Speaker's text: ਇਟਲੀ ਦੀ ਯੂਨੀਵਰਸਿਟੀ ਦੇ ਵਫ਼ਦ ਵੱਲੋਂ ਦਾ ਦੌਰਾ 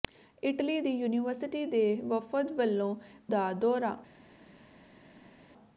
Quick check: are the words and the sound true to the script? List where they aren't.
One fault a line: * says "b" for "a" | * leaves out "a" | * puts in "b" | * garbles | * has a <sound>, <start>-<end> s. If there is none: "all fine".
all fine